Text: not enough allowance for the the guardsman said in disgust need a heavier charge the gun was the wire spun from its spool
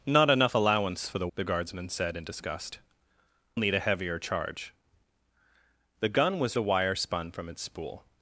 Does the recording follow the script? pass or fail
pass